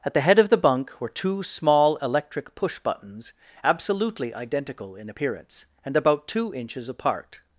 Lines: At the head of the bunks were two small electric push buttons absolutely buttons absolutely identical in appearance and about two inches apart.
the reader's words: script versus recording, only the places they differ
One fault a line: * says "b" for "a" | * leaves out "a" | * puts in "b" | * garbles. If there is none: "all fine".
* says "bunk" for "bunks"
* leaves out "buttons absolutely"